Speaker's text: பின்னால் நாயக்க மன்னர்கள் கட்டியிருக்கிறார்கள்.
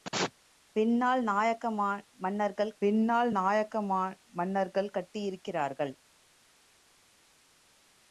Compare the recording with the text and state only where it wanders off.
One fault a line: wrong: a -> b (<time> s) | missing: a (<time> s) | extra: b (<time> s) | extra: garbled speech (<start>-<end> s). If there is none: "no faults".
extra: பின்னால் நாயக்க மன்னர்கள் (2.8 s)